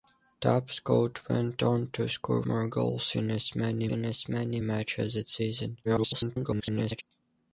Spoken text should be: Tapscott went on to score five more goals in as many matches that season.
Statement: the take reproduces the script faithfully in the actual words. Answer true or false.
false